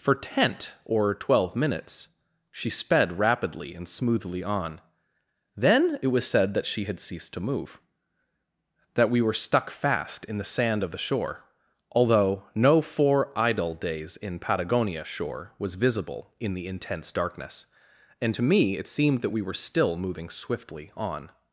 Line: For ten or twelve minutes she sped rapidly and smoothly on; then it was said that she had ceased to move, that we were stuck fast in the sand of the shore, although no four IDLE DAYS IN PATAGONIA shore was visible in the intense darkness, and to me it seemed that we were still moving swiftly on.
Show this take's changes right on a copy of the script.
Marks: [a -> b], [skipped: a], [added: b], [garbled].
For [ten -> tent] or twelve minutes she sped rapidly and smoothly on; then it was said that she had ceased to move, that we were stuck fast in the sand of the shore, although no four IDLE DAYS IN PATAGONIA shore was visible in the intense darkness, and to me it seemed that we were still moving swiftly on.